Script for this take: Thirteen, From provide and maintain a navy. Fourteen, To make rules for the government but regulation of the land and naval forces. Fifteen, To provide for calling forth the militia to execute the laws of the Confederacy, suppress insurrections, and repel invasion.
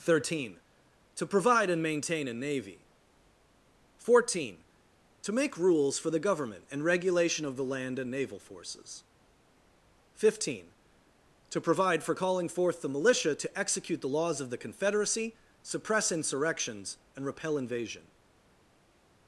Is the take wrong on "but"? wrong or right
wrong